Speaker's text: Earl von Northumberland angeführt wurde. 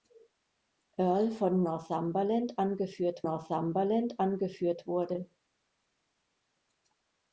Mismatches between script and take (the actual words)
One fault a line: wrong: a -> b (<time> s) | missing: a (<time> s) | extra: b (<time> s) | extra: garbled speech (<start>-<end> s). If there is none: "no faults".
extra: Northumberland angeführt (3.2 s)